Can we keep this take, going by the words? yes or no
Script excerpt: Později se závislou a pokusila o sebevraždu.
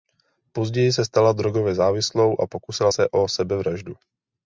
no